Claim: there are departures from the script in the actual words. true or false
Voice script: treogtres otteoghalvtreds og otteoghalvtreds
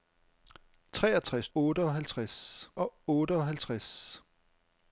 false